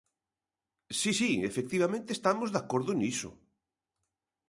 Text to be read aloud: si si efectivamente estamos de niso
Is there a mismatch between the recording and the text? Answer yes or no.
yes